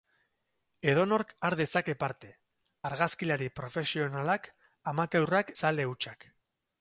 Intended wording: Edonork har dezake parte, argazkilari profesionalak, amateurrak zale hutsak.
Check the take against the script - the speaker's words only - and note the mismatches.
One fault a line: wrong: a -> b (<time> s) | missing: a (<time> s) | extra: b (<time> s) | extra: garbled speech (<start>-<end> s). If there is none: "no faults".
no faults